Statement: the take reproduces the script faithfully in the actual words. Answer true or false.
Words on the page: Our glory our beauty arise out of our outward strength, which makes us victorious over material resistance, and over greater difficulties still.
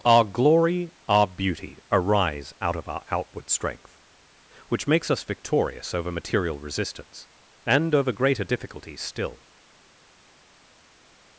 true